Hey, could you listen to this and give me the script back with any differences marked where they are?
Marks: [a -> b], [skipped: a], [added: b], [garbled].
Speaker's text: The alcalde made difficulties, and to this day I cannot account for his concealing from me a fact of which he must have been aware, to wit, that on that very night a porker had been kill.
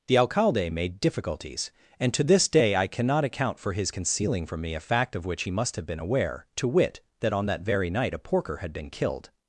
The alcalde made difficulties, and to this day I cannot account for his concealing from me a fact of which he must have been aware, to wit, that on that very night a porker had been [kill. -> killed]